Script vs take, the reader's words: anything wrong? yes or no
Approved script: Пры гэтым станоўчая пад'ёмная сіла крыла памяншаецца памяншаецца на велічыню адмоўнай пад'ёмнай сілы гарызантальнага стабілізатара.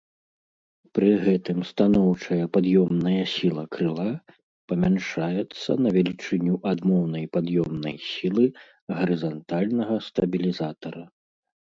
yes